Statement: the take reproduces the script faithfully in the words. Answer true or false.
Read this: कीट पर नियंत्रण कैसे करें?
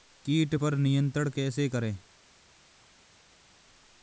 true